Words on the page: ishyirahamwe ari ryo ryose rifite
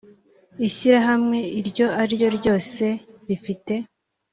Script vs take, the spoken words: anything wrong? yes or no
yes